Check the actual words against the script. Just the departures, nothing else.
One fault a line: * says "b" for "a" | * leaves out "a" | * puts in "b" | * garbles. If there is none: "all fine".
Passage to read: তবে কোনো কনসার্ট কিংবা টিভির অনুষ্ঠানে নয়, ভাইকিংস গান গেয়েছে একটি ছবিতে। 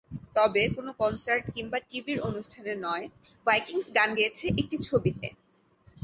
all fine